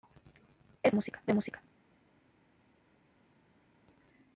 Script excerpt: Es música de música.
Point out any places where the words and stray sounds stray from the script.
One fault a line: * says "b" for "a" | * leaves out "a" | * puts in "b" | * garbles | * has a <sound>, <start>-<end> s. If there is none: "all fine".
all fine